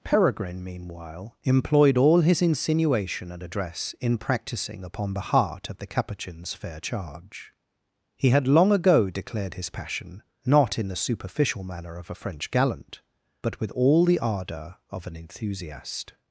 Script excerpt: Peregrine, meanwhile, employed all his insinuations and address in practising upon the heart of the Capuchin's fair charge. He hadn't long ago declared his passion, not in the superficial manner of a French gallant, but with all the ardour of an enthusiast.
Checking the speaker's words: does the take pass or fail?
fail